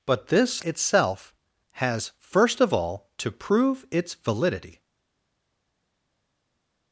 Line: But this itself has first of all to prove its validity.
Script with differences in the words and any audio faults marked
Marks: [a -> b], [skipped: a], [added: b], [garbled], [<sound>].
But this itself has first of all to prove its validity.